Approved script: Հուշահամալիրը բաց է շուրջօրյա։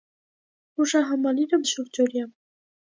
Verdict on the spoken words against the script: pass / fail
fail